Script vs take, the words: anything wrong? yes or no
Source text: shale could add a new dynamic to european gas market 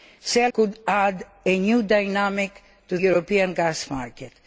no